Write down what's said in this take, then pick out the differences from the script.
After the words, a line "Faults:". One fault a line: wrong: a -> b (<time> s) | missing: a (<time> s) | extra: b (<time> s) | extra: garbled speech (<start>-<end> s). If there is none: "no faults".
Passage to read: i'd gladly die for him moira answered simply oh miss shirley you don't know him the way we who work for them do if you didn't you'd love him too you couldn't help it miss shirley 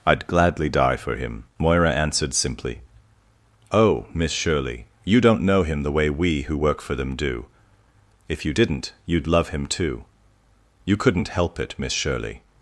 i'd gladly die for him moira answered simply oh miss shirley you don't know him the way we who work for them do if you didn't you'd love him too you couldn't help it miss shirley
Faults:
no faults